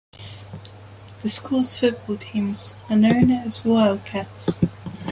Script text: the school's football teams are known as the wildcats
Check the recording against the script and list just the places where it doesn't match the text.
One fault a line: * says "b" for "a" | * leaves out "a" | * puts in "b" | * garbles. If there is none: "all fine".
all fine